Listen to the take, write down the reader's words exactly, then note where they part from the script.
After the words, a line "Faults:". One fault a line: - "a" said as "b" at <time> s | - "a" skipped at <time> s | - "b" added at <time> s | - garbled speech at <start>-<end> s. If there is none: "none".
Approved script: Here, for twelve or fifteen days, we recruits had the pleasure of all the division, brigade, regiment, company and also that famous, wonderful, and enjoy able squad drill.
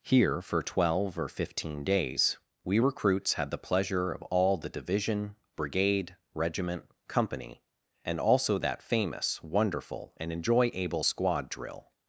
Here, for twelve or fifteen days, we recruits had the pleasure of all the division, brigade, regiment, company and also that famous, wonderful, and enjoy able squad drill.
Faults:
none